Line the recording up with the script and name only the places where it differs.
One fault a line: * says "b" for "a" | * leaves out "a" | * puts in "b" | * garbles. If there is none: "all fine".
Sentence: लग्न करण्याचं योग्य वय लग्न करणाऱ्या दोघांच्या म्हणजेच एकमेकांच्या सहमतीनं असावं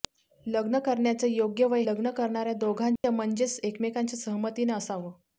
all fine